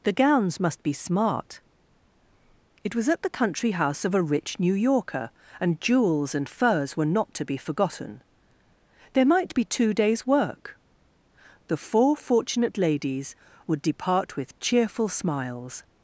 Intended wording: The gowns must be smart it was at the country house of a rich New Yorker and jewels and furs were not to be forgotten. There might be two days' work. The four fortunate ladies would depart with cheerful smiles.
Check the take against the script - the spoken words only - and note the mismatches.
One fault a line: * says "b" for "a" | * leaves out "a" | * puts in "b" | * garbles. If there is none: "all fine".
all fine